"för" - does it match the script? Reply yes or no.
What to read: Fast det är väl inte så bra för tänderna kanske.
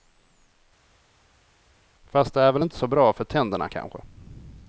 yes